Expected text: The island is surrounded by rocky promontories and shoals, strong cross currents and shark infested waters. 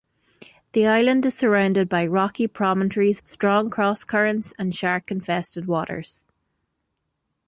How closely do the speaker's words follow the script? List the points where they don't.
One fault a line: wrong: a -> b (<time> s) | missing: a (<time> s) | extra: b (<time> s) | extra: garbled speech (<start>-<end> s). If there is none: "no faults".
missing: and shoals (3.2 s)